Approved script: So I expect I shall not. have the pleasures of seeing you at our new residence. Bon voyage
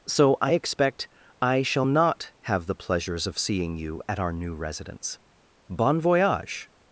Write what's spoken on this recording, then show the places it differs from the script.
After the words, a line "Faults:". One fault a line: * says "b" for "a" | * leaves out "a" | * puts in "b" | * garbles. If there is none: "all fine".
So I expect I shall not. have the pleasures of seeing you at our new residence. Bon voyage
Faults:
all fine